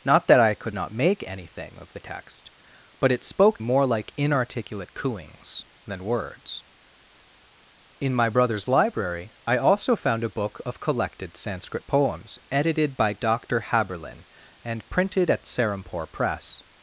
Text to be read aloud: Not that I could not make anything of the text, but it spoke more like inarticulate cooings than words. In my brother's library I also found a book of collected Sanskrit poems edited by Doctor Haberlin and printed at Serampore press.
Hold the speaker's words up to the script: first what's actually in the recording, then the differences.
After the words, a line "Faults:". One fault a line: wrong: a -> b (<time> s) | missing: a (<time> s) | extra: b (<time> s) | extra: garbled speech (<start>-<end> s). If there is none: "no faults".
Not that I could not make anything of the text, but it spoke more like inarticulate cooings than words. In my brother's library I also found a book of collected Sanskrit poems edited by Doctor Haberlin and printed at Serampore press.
Faults:
no faults